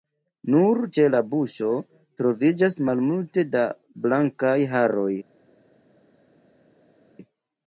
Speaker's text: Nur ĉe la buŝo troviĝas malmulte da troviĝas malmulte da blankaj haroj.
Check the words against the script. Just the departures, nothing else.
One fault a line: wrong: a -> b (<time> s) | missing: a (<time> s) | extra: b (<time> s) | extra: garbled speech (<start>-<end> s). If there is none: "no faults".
missing: troviĝas malmulte da (3.7 s)